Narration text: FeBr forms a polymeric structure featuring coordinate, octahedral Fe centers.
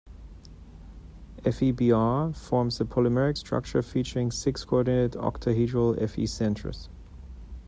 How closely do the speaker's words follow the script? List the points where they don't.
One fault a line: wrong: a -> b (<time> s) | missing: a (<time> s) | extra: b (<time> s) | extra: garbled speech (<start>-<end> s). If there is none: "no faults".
extra: six (4.3 s)